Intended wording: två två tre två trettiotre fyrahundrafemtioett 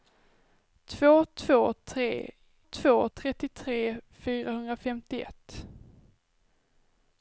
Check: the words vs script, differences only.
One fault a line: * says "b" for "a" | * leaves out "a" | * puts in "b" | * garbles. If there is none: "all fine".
all fine